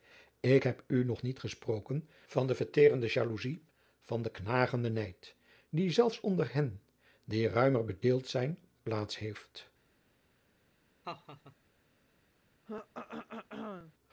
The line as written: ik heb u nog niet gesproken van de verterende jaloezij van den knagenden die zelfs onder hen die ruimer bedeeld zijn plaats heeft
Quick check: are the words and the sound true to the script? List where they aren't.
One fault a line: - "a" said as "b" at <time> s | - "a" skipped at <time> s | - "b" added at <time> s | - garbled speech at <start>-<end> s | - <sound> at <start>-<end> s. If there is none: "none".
- "nijd" added at 4.9 s
- laugh at 11.0-11.6 s
- throat clearing at 12.7-13.9 s